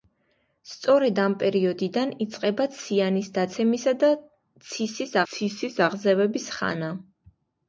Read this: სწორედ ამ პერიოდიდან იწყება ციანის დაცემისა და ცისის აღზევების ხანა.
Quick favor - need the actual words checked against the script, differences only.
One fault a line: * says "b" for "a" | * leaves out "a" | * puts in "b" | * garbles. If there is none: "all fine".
* puts in "ცისის"